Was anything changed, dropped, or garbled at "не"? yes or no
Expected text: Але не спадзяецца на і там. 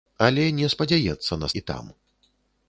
no